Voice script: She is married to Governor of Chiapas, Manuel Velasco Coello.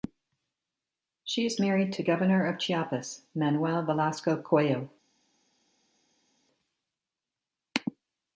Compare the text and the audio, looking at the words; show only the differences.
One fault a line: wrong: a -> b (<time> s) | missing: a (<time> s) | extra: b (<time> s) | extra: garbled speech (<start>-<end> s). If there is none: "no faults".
no faults